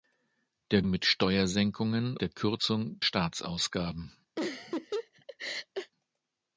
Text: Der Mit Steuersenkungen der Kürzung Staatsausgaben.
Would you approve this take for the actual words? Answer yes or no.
yes